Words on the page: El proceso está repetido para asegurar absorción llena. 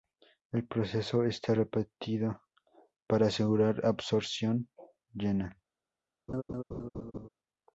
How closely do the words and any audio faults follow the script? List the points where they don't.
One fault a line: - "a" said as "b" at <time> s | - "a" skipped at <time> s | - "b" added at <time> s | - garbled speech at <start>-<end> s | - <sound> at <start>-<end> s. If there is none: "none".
- laugh at 6.3-7.3 s